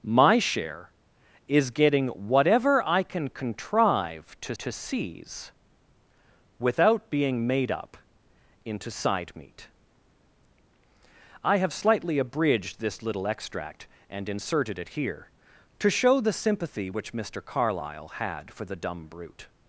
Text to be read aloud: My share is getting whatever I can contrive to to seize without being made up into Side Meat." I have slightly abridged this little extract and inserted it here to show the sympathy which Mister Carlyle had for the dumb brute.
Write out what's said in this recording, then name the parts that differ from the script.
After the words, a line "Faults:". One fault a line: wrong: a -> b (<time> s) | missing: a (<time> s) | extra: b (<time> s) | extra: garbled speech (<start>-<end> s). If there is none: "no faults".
My share is getting whatever I can contrive to to seize without being made up into Side Meat." I have slightly abridged this little extract and inserted it here to show the sympathy which Mister Carlyle had for the dumb brute.
Faults:
no faults